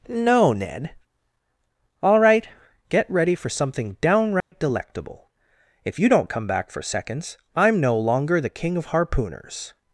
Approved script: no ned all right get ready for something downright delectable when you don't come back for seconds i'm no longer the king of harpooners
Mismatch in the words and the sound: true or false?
true